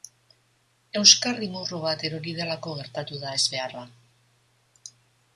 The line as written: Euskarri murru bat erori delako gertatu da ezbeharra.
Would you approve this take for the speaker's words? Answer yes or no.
yes